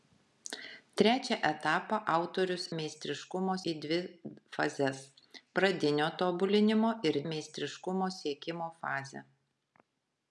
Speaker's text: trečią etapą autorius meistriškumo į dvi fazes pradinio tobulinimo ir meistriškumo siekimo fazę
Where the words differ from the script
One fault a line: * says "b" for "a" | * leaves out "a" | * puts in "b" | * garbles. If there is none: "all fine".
all fine